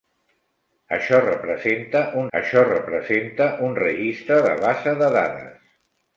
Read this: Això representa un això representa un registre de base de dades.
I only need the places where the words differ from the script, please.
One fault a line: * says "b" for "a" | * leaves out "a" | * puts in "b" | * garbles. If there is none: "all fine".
all fine